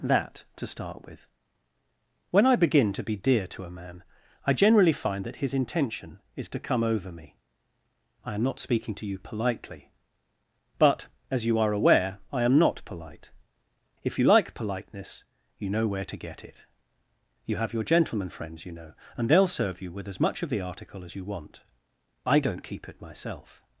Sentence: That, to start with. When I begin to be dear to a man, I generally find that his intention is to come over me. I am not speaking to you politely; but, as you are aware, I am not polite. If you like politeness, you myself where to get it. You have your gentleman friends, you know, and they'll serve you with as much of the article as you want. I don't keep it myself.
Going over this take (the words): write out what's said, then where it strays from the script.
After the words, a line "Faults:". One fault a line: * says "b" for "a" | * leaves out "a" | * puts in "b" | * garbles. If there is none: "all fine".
That, to start with. When I begin to be dear to a man, I generally find that his intention is to come over me. I am not speaking to you politely; but, as you are aware, I am not polite. If you like politeness, you know where to get it. You have your gentleman friends, you know, and they'll serve you with as much of the article as you want. I don't keep it myself.
Faults:
* says "know" for "myself"